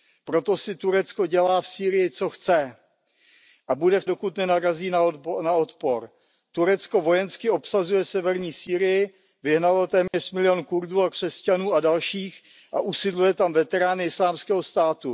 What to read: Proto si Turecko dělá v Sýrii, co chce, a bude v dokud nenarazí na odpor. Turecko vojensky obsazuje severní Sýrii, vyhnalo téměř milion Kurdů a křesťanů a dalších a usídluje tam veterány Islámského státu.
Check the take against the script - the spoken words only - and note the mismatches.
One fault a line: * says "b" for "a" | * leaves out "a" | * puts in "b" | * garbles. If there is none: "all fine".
all fine